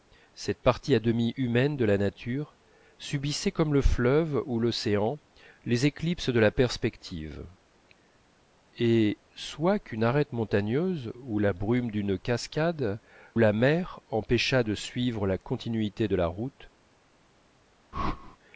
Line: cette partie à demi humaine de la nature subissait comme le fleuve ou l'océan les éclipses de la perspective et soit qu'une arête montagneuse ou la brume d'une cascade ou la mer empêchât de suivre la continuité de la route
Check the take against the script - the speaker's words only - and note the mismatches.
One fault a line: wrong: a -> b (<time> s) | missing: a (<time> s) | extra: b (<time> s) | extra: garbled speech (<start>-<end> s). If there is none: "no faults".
missing: ou (13.0 s)